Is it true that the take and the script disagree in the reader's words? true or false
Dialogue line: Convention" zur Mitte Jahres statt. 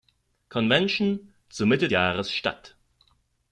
false